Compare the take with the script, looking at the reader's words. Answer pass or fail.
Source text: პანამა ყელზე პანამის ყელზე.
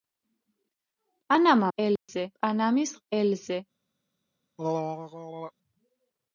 pass